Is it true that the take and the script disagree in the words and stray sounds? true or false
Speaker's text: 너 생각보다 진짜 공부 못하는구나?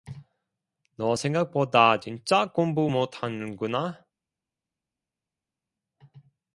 false